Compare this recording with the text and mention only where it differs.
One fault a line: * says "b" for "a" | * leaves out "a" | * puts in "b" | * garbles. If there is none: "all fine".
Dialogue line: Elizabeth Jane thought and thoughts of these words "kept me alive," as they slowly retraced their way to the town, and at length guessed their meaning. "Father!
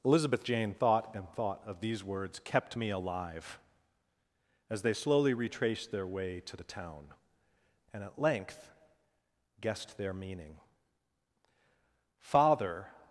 * says "thought" for "thoughts"